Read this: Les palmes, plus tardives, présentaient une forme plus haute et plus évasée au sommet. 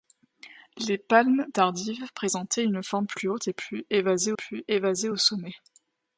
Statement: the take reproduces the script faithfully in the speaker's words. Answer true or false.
false